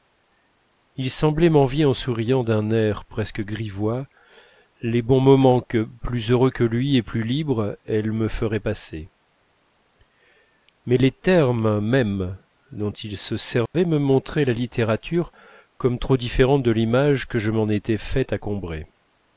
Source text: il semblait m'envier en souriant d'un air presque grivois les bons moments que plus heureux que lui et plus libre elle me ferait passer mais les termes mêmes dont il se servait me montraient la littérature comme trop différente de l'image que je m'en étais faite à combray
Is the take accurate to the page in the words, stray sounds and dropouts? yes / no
no